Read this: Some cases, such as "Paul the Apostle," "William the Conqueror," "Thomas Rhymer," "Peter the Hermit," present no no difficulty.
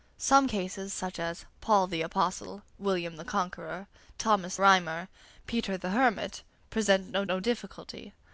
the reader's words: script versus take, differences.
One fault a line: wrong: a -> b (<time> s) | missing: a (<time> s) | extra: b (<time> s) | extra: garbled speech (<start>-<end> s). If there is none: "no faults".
no faults